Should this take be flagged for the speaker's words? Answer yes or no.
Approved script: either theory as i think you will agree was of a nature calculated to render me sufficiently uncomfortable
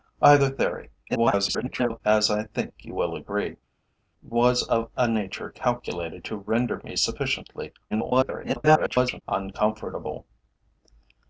yes